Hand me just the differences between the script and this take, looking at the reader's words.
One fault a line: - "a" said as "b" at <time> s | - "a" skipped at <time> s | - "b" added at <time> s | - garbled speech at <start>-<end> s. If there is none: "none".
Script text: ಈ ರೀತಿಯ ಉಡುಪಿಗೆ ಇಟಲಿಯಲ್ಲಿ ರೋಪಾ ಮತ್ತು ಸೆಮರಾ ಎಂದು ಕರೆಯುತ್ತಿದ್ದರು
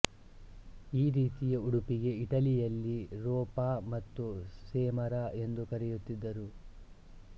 none